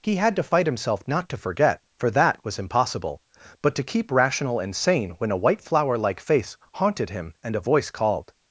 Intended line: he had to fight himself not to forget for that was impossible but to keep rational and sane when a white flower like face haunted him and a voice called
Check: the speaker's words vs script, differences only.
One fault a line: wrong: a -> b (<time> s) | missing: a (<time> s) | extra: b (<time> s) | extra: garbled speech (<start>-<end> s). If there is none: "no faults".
no faults